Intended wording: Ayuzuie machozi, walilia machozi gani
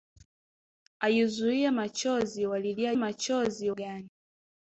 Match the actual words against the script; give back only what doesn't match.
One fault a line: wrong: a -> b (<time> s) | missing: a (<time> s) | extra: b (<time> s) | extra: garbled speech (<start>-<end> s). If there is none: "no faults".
no faults